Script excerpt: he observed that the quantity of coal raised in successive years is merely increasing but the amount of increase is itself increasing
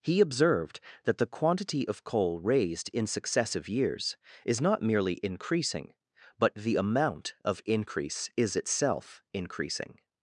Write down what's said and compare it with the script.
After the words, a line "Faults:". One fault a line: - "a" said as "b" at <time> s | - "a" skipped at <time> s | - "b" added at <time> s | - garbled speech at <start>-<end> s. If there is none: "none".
he observed that the quantity of coal raised in successive years is not merely increasing but the amount of increase is itself increasing
Faults:
- "not" added at 4.6 s